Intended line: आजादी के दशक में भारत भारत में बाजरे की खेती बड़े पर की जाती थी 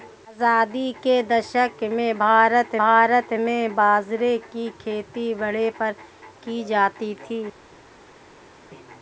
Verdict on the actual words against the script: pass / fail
pass